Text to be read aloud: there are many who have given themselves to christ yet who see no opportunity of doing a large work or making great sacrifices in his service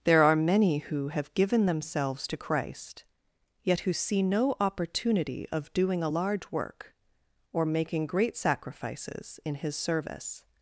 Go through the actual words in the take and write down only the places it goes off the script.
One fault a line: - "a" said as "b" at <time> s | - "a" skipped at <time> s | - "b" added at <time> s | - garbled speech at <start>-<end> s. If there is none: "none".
none